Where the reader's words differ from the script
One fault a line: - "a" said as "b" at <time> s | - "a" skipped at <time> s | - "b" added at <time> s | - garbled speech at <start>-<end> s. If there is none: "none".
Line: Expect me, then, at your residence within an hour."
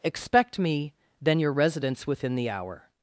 - "at" skipped at 1.4 s
- "an" said as "the" at 2.3 s